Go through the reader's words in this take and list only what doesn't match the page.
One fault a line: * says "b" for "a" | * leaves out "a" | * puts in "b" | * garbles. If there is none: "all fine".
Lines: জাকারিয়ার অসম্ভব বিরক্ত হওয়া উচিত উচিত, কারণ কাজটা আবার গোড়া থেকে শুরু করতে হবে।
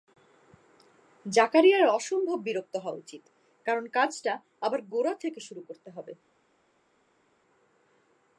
* leaves out "উচিত"